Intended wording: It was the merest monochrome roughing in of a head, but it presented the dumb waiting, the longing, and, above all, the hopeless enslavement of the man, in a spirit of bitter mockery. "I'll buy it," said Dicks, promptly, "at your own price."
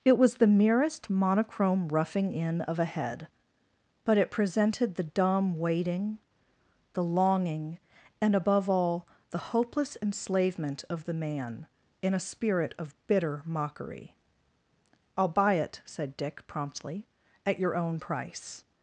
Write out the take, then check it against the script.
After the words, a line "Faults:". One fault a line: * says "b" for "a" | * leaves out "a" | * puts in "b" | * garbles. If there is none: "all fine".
It was the merest monochrome roughing in of a head, but it presented the dumb waiting, the longing, and, above all, the hopeless enslavement of the man, in a spirit of bitter mockery. "I'll buy it," said Dick, promptly, "at your own price."
Faults:
* says "Dick" for "Dicks"